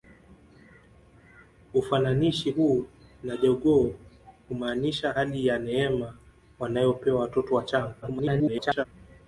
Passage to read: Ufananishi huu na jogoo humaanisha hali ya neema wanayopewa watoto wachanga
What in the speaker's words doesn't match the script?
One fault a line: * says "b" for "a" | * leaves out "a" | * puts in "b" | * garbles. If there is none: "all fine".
* garbles